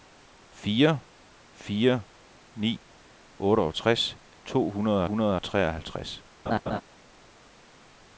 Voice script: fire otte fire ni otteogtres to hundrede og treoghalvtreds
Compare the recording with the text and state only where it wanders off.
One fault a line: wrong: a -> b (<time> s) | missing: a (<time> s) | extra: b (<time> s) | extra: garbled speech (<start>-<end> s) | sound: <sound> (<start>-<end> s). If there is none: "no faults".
missing: otte (1.0 s)
extra: hundrede (5.0 s)
sound: laugh (6.5-6.8 s)